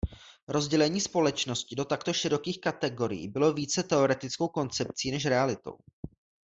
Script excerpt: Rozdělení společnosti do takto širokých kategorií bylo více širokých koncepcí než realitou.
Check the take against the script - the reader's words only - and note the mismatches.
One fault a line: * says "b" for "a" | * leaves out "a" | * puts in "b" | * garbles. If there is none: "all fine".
* says "teoretickou" for "širokých"